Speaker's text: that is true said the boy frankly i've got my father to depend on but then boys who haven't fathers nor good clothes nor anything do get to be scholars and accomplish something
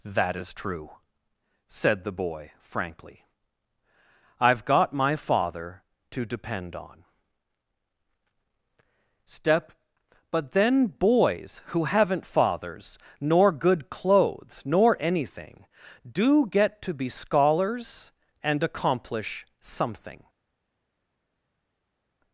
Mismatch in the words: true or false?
true